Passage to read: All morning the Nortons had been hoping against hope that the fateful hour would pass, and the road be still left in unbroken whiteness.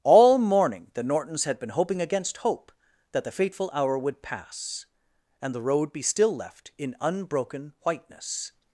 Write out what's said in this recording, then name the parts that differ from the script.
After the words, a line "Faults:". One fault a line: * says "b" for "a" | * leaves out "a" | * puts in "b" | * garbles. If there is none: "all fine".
All morning the Nortons had been hoping against hope that the fateful hour would pass, and the road be still left in unbroken whiteness.
Faults:
all fine